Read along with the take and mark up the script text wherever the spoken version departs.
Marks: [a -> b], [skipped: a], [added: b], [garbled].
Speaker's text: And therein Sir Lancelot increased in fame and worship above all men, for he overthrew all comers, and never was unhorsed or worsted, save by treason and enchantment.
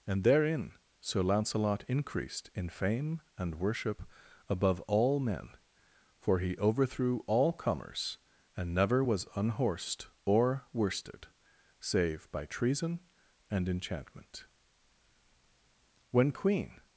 And therein Sir Lancelot increased in fame and worship above all men, for he overthrew all comers, and never was unhorsed or worsted, save by treason and enchantment. [added: When Queen]